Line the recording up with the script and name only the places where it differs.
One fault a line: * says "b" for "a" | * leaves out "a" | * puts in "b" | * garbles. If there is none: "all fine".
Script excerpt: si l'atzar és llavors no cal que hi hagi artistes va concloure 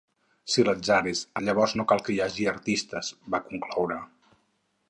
all fine